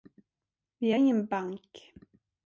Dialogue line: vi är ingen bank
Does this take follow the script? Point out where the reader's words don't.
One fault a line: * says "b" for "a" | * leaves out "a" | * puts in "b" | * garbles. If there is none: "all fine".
all fine